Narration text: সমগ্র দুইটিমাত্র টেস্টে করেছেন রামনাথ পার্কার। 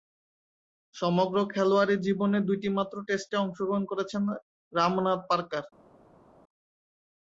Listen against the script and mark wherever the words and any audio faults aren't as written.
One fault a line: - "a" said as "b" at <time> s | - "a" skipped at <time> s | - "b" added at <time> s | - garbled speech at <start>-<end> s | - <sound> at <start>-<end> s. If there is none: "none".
- "খেলোয়াড়ী জীবনে" added at 1.5 s
- "অংশগ্রহণ" added at 3.4 s